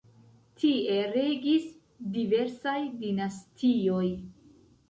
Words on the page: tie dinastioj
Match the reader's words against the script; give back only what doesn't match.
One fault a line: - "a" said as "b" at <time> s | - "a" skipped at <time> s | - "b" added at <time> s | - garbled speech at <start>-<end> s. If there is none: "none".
- "regis diversaj" added at 1.2 s